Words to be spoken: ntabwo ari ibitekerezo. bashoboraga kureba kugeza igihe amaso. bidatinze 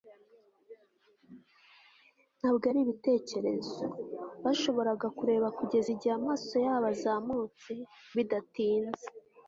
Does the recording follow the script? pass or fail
fail